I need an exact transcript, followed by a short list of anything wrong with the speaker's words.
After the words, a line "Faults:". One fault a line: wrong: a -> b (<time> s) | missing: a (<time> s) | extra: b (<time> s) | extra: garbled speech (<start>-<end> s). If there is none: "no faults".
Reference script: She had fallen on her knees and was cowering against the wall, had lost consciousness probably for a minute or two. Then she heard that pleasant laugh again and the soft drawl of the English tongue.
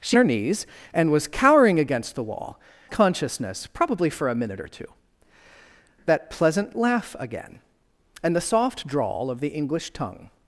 She her knees and was cowering against the wall, consciousness probably for a minute or two. That pleasant laugh again and the soft drawl of the English tongue.
Faults:
missing: had fallen on (0.2 s)
missing: had lost (2.6 s)
missing: Then she heard (4.9 s)